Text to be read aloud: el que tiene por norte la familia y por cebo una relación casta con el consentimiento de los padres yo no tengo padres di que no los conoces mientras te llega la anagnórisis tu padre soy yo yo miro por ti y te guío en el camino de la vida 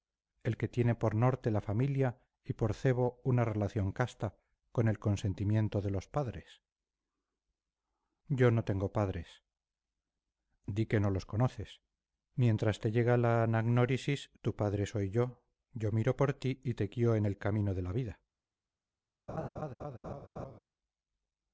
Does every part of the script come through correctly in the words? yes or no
yes